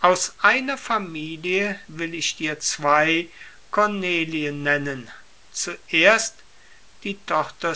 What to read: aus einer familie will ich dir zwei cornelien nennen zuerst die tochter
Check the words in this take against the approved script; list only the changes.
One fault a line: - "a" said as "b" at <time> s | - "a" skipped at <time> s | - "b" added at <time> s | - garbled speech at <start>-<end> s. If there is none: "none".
none